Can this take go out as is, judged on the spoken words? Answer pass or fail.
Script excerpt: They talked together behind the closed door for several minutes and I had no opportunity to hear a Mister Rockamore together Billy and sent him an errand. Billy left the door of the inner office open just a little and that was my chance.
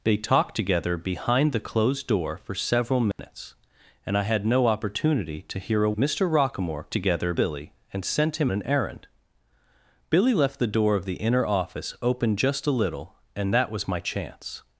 pass